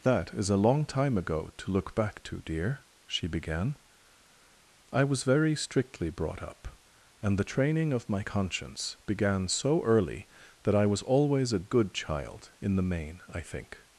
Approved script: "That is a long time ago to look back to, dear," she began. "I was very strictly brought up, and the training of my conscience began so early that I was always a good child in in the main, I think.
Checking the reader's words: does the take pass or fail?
fail